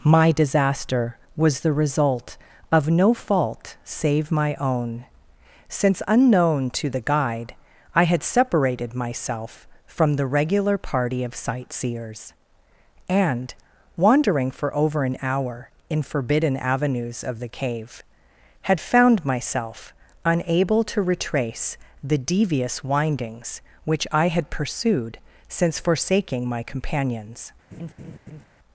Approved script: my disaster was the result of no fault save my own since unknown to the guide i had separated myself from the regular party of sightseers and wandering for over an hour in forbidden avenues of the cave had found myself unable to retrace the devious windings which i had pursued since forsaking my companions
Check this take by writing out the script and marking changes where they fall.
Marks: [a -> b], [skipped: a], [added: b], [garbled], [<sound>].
my disaster was the result of no fault save my own since unknown to the guide i had separated myself from the regular party of sightseers and wandering for over an hour in forbidden avenues of the cave had found myself unable to retrace the devious windings which i had pursued since forsaking my companions [laugh]